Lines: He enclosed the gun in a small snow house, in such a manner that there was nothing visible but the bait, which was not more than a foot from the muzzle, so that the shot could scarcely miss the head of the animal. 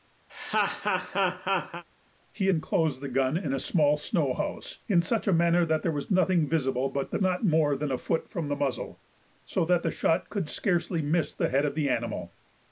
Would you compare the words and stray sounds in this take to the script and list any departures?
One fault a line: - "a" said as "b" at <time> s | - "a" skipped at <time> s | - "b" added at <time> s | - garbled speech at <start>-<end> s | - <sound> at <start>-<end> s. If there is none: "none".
- laugh at 0.3-1.8 s
- "bait which was" skipped at 7.2 s